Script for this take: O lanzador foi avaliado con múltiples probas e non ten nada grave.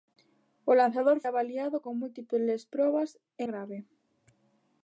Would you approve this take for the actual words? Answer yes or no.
no